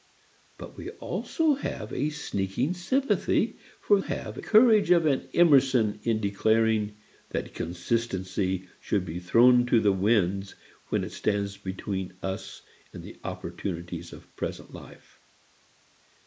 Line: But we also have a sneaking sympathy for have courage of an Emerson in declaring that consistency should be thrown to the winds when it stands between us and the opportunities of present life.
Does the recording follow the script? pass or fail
pass